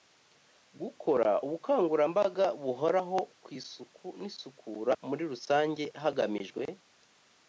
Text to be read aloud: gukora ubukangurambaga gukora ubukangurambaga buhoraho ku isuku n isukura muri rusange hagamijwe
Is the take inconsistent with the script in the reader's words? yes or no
yes